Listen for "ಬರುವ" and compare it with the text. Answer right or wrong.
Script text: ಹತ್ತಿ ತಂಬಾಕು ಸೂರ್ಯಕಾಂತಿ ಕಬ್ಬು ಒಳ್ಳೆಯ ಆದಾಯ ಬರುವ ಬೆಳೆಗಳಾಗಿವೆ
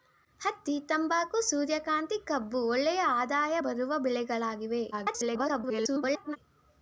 right